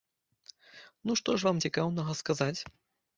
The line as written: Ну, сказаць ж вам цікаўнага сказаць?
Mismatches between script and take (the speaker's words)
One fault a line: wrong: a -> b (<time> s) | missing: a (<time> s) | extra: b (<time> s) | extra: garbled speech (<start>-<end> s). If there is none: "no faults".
wrong: сказаць -> што (1.2 s)